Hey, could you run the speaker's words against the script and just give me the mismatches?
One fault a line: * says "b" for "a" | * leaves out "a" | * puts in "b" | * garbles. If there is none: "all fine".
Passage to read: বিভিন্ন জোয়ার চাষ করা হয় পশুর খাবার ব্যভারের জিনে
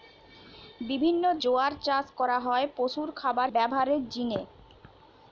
all fine